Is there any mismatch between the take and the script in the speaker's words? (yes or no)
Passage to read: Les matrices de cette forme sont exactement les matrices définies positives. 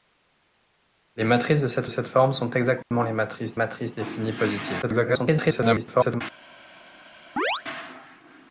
yes